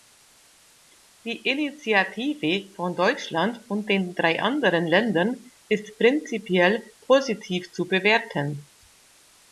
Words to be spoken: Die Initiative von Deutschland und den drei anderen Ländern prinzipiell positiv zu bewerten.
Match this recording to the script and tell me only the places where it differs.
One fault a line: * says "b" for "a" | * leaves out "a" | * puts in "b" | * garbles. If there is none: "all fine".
* puts in "ist"